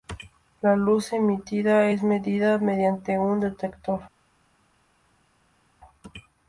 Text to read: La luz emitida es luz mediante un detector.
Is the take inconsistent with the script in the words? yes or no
yes